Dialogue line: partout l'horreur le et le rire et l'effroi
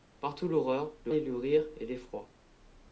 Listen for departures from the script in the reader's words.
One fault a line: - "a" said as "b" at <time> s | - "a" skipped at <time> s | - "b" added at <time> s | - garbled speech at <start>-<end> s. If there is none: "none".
none